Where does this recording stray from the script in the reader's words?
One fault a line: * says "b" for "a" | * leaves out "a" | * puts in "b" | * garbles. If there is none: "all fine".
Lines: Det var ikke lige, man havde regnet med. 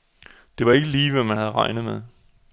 * puts in "hvad"